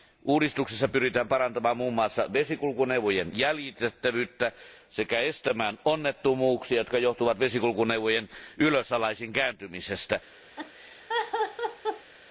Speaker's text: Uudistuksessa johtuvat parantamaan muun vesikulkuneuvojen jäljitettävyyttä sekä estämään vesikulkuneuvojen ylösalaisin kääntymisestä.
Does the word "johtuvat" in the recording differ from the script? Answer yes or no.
yes